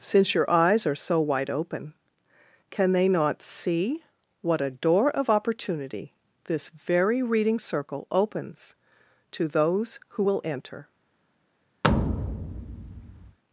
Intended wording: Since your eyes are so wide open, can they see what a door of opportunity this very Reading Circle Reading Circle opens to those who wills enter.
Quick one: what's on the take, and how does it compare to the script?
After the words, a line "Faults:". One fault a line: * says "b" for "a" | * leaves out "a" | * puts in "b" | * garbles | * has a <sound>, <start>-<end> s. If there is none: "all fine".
Since your eyes are so wide open, can they not see what a door of opportunity this very Reading Circle opens to those who will enter.
Faults:
* puts in "not"
* leaves out "Reading Circle"
* says "will" for "wills"
* has a thud, 11.8-13.4 s